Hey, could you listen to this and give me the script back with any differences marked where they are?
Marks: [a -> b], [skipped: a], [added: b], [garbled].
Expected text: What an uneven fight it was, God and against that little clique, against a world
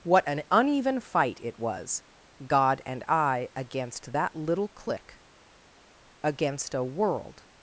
What an uneven fight it was, God and [added: I] against that little clique, against a world